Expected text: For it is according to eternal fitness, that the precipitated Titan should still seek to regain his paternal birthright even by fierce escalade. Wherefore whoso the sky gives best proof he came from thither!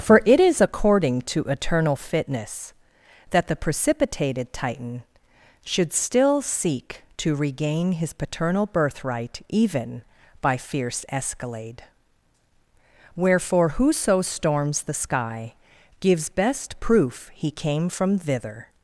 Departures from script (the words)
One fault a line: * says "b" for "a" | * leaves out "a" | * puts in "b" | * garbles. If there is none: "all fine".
* puts in "storms"